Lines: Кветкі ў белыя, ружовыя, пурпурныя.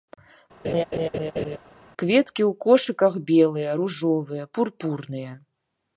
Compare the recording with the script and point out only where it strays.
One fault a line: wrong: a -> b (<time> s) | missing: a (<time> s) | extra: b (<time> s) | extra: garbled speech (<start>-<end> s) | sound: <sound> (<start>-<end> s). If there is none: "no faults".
sound: laugh (0.6-1.6 s)
extra: кошыках (2.6 s)